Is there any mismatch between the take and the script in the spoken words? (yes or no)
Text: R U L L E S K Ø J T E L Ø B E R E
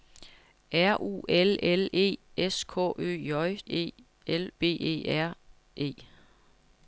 yes